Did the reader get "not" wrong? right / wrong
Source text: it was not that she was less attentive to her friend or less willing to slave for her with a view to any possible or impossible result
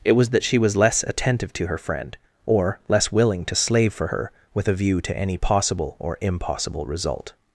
wrong